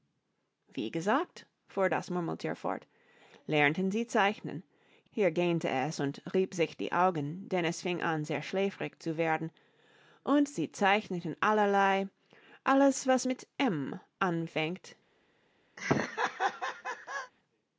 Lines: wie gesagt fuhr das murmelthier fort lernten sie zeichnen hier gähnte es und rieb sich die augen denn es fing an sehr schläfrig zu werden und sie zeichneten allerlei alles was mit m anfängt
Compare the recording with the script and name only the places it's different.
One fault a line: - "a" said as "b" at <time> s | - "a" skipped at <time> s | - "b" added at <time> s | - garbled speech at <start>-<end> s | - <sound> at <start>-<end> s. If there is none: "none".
- laugh at 15.8-17.3 s